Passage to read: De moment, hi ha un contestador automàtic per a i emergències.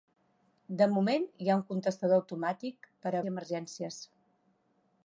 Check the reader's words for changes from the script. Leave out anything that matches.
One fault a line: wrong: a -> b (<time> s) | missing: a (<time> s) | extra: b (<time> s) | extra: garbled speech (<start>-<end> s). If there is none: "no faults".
no faults